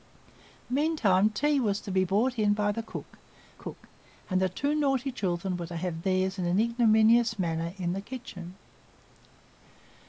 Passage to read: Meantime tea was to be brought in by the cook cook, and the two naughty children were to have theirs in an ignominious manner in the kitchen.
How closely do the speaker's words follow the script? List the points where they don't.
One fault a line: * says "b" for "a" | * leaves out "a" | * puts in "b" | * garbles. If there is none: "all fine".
all fine